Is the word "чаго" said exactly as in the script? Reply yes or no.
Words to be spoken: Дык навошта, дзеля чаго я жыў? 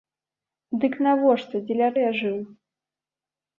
no